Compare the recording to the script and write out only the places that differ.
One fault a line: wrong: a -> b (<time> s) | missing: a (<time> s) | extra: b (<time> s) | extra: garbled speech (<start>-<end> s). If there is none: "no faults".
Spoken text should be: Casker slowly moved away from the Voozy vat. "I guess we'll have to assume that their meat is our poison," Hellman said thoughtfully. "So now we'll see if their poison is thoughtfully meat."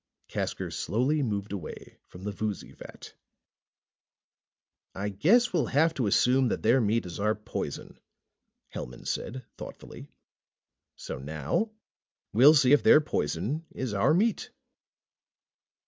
wrong: thoughtfully -> our (13.9 s)